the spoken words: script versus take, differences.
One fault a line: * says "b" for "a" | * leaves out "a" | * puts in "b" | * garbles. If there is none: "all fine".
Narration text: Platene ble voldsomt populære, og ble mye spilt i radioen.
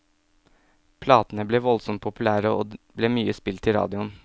all fine